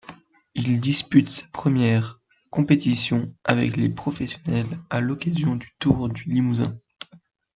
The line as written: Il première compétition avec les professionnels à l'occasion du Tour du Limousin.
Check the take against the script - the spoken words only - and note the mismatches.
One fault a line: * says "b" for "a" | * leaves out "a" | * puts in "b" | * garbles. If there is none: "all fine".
* puts in "dispute sa"